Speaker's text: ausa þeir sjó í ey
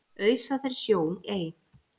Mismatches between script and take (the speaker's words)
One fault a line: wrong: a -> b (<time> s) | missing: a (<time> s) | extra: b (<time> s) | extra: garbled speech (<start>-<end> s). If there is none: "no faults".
no faults